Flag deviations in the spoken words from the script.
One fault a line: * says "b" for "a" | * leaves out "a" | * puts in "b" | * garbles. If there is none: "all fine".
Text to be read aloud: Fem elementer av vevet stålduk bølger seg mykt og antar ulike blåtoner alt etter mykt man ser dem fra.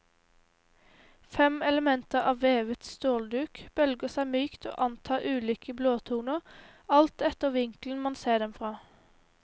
* says "vinkelen" for "mykt"